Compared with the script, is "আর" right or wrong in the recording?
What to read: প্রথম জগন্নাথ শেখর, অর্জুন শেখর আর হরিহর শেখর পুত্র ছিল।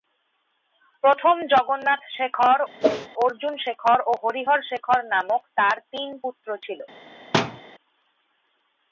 wrong